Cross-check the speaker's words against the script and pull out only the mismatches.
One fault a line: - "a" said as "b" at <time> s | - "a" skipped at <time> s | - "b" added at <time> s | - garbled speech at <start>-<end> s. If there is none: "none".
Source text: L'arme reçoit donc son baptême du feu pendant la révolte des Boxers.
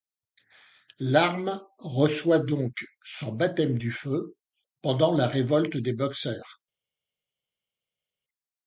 none